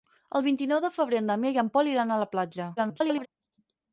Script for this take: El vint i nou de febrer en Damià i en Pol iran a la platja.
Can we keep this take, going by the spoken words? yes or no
no